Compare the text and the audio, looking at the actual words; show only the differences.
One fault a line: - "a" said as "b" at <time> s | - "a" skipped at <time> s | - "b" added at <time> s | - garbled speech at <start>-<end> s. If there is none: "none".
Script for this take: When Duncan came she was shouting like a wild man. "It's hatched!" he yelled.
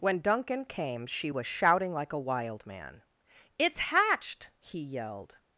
none